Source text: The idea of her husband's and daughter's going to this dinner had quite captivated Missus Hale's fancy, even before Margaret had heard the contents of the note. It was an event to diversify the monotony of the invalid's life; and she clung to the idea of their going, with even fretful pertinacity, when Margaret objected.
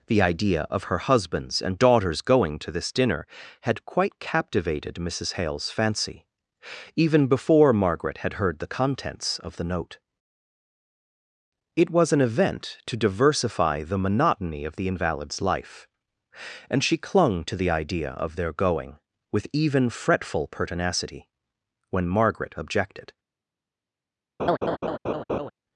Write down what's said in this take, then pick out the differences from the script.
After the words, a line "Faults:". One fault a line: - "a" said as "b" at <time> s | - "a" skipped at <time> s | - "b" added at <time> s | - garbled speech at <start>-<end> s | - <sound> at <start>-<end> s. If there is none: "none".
The idea of her husband's and daughter's going to this dinner had quite captivated Missus Hale's fancy, even before Margaret had heard the contents of the note. It was an event to diversify the monotony of the invalid's life; and she clung to the idea of their going, with even fretful pertinacity, when Margaret objected.
Faults:
- laugh at 24.4-25.5 s